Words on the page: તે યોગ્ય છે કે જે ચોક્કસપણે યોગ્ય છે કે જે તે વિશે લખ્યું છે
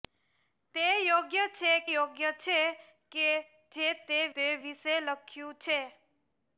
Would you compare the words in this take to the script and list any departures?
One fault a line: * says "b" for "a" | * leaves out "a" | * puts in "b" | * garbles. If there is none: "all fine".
* leaves out "કે જે ચોક્કસપણે"
* puts in "તે"